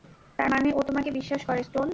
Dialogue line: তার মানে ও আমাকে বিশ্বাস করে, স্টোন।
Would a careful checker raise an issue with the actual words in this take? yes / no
yes